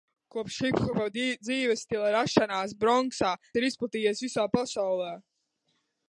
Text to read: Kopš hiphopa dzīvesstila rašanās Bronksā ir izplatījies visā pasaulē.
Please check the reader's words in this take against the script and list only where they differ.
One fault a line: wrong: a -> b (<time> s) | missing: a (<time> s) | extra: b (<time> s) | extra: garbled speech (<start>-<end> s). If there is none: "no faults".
no faults